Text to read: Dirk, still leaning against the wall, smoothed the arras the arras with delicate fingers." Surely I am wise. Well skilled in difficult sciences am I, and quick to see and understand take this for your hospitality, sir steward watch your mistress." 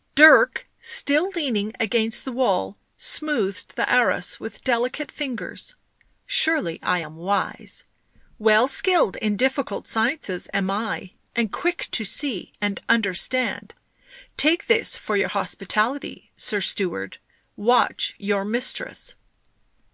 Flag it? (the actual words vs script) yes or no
yes